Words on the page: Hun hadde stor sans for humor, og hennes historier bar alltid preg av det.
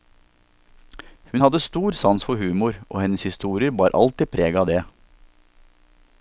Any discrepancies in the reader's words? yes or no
no